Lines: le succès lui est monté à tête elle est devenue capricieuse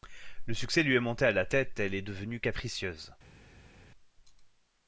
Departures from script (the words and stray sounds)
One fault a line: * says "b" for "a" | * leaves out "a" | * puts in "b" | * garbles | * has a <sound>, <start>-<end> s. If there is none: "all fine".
* puts in "la"